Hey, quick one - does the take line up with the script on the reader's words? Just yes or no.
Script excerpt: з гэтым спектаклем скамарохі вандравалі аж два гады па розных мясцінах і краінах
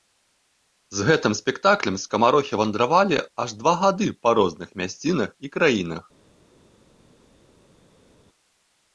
yes